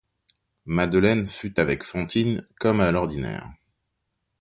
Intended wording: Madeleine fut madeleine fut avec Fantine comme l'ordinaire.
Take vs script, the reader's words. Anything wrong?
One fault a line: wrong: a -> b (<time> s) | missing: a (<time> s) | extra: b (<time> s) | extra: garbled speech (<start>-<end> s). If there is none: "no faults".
missing: madeleine fut (1.6 s)
extra: à (2.8 s)